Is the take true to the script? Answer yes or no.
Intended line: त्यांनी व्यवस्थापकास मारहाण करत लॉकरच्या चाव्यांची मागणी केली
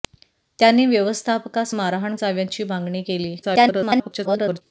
no